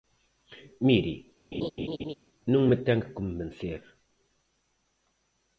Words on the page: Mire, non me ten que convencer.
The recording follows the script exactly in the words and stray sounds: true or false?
false